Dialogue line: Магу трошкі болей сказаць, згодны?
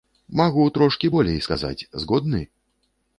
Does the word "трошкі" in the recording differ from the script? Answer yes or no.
no